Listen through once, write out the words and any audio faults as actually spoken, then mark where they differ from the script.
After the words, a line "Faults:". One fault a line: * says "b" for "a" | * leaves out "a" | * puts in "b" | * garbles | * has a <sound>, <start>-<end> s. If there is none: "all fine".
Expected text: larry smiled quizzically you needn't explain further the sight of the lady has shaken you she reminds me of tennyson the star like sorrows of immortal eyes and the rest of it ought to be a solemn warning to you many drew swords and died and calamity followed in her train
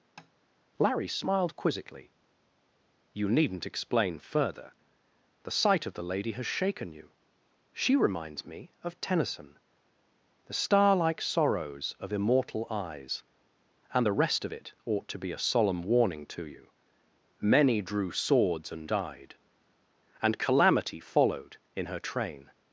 larry smiled quizzically you needn't explain further the sight of the lady has shaken you she reminds me of tennyson the star like sorrows of immortal eyes and the rest of it ought to be a solemn warning to you many drew swords and died and calamity followed in her train
Faults:
* has a tap, 0.2-0.3 s